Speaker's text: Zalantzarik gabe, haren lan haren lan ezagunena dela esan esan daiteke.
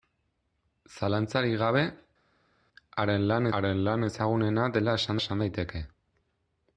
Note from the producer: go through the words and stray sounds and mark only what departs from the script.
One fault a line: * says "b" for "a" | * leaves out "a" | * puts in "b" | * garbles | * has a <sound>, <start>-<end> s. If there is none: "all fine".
all fine